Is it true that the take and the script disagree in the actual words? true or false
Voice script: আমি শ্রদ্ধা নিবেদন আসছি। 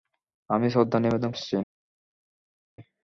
false